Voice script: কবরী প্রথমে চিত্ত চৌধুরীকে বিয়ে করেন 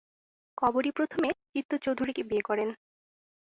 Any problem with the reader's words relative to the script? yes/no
no